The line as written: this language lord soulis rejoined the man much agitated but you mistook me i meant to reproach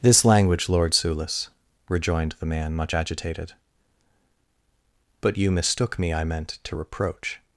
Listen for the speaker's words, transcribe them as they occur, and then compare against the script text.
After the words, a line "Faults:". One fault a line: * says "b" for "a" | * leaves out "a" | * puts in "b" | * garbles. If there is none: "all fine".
this language lord soulis rejoined the man much agitated but you mistook me i meant to reproach
Faults:
all fine